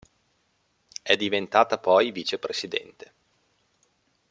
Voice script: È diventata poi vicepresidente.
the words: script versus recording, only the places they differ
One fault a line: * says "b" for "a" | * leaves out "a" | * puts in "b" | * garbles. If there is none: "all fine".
all fine